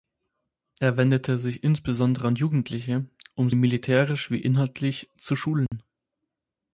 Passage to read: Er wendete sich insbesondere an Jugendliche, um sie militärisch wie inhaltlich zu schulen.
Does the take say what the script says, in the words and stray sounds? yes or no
no